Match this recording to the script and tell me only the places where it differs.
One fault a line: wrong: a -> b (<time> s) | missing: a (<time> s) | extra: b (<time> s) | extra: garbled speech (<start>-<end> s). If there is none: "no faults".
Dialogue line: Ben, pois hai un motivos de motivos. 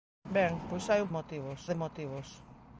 no faults